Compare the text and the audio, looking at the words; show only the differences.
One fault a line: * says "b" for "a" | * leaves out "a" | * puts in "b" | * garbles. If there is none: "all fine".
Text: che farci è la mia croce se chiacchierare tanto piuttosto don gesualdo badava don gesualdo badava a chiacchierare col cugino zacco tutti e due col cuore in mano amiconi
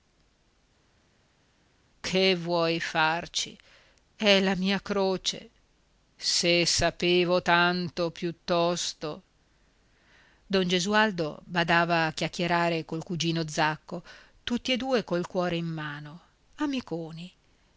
* puts in "vuoi"
* says "sapevo" for "chiacchierare"
* leaves out "don gesualdo badava"